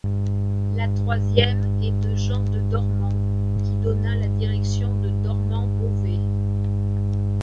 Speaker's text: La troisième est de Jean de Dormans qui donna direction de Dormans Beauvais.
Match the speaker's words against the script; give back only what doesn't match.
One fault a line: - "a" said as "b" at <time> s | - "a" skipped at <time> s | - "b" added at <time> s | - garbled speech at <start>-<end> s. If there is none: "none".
- "la" added at 4.2 s